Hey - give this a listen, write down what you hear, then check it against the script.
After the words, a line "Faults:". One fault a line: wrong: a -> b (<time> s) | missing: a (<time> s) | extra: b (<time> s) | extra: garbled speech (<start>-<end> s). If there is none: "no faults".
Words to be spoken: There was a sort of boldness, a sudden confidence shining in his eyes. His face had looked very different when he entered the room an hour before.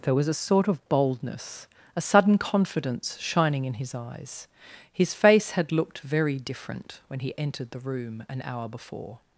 There was a sort of boldness, a sudden confidence shining in his eyes. His face had looked very different when he entered the room an hour before.
Faults:
no faults